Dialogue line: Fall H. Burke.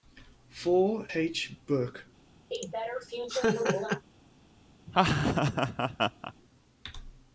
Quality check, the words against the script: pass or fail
pass